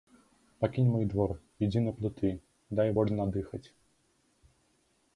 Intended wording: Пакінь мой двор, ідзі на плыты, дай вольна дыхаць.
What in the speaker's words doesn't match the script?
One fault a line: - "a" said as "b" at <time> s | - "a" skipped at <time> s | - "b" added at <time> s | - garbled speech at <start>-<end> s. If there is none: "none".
none